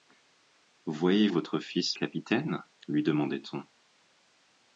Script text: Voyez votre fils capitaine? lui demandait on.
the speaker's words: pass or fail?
pass